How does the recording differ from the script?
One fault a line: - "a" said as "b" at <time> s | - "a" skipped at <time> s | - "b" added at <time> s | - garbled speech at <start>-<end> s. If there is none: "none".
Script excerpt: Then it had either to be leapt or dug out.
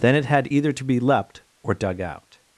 none